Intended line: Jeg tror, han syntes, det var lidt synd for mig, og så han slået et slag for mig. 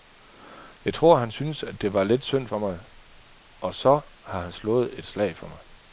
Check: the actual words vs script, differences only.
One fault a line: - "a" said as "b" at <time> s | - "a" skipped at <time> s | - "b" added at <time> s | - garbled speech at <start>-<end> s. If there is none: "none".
- "har" added at 4.2 s